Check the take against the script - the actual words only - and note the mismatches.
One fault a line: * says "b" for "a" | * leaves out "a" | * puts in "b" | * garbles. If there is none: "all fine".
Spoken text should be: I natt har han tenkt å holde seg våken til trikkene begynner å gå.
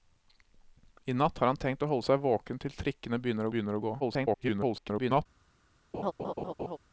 * puts in "begynner"
* garbles